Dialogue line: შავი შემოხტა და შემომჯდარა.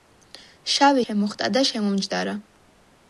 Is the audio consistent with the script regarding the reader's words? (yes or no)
yes